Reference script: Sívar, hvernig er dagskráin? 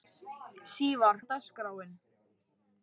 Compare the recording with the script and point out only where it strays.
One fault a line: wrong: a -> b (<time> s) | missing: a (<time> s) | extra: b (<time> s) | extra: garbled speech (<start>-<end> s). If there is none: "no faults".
missing: hvernig (1.2 s)